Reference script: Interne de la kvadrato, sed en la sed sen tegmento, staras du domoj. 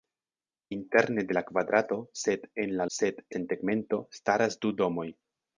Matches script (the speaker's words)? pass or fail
pass